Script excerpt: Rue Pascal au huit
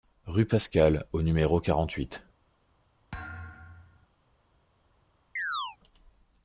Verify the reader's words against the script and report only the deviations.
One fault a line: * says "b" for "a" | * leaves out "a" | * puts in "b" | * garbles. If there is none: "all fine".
* puts in "numéro quarante"